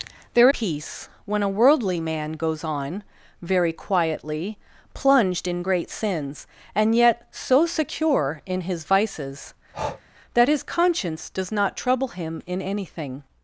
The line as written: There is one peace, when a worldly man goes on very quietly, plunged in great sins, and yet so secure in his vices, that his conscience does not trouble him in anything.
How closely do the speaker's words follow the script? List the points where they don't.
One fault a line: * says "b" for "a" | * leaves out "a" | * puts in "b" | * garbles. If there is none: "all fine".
* leaves out "is one"